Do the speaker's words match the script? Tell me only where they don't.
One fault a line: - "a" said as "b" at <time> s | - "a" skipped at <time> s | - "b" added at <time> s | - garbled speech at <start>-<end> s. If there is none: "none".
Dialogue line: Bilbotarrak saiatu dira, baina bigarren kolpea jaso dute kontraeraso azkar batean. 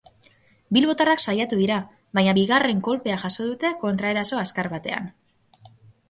none